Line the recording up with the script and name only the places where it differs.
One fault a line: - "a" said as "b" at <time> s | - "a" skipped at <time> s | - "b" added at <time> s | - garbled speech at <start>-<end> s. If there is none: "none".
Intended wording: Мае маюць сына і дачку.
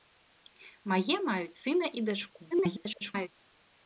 - garbled speech at 2.5-3.3 s